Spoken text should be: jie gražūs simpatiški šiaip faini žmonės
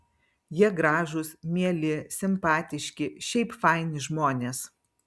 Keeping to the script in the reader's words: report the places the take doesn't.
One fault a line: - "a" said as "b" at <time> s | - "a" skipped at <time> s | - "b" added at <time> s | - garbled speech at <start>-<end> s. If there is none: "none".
- "mieli" added at 1.6 s